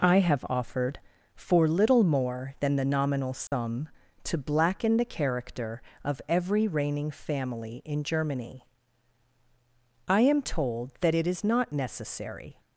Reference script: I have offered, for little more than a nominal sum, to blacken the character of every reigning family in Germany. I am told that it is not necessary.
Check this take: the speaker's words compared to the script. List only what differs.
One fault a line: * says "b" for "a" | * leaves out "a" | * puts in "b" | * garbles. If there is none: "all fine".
* says "the" for "a"